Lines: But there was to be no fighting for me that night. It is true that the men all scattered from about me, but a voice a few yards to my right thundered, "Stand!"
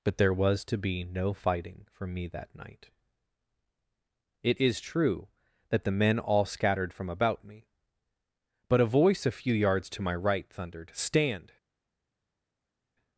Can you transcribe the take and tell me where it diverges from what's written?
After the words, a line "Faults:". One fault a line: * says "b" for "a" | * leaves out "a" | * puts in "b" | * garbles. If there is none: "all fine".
But there was to be no fighting for me that night. It is true that the men all scattered from about me, but a voice a few yards to my right thundered, "Stand!"
Faults:
all fine